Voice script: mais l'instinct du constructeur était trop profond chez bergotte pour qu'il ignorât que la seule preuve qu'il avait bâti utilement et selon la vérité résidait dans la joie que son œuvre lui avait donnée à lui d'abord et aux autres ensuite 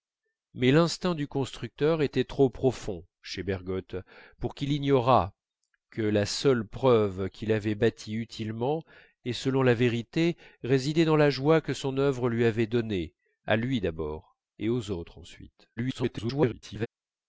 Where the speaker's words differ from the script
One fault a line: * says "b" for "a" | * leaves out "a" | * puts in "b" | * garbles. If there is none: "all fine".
* garbles